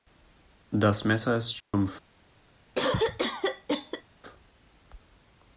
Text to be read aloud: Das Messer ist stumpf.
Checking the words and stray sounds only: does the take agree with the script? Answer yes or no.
no